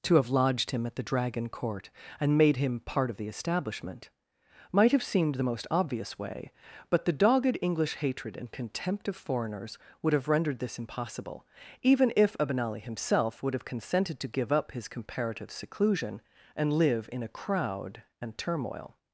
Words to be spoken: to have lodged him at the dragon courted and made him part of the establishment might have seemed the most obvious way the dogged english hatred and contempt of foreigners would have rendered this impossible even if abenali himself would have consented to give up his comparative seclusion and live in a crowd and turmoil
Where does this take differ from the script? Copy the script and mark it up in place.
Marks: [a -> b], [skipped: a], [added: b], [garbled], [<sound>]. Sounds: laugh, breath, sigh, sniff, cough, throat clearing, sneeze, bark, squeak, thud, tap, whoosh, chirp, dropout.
to have lodged him at the dragon [courted -> court] and made him part of the establishment might have seemed the most obvious way [added: but] the dogged english hatred and contempt of foreigners would have rendered this impossible even if abenali himself would have consented to give up his comparative seclusion and live in a crowd and turmoil